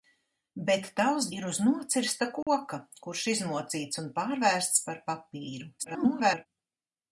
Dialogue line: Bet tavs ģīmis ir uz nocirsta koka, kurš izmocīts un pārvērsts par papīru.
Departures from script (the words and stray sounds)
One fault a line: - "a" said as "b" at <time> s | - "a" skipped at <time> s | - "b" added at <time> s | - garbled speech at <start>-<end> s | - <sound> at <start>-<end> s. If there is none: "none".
- "ģīmis" skipped at 1.3 s
- dropout at 2.4-2.5 s
- garbled speech at 5.8-6.5 s